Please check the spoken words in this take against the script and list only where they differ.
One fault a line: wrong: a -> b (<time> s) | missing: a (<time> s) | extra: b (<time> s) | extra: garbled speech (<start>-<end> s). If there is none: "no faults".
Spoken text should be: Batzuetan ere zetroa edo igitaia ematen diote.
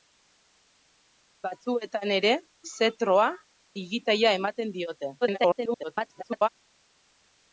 missing: edo (3.3 s)
extra: garbled speech (5.2-6.5 s)